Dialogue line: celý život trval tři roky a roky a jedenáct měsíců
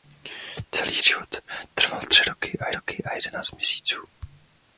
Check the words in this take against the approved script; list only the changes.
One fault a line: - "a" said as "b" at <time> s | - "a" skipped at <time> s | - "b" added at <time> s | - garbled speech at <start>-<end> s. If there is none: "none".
none